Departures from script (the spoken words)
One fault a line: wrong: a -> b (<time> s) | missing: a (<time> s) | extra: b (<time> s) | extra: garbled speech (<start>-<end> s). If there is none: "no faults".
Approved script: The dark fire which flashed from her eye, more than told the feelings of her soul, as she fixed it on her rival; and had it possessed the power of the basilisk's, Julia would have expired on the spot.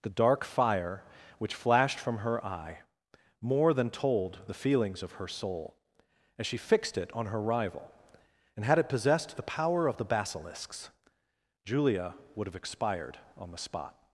no faults